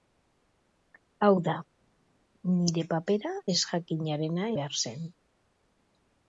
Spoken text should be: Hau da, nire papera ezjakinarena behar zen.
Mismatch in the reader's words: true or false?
false